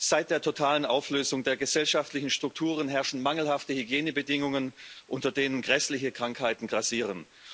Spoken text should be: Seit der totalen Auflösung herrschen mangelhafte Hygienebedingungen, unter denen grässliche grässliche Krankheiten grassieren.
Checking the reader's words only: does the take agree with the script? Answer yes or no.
no